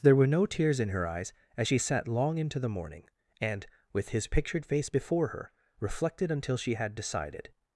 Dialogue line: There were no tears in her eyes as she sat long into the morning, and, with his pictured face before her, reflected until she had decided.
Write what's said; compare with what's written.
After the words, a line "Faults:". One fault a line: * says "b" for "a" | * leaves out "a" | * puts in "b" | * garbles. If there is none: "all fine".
There were no tears in her eyes as she sat long into the morning, and, with his pictured face before her, reflected until she had decided.
Faults:
all fine